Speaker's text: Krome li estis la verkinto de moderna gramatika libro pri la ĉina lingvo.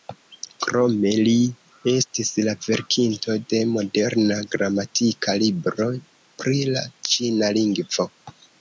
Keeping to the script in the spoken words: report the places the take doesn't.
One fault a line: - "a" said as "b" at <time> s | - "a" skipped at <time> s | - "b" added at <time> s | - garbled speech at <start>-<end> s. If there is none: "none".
none